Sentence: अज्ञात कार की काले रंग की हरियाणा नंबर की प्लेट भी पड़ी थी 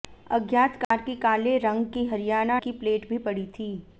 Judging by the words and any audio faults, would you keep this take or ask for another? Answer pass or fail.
fail